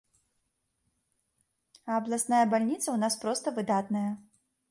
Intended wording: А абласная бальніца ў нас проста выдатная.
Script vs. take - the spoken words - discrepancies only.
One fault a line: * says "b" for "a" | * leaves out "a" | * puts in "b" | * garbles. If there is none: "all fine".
all fine